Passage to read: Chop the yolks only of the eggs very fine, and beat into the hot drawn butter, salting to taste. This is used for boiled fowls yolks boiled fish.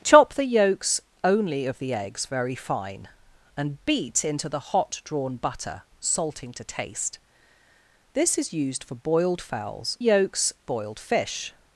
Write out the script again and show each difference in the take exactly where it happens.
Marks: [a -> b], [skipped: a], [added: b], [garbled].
Chop the yolks only of the eggs very fine, and beat into the hot drawn butter, salting to taste. This is used for boiled fowls yolks boiled fish.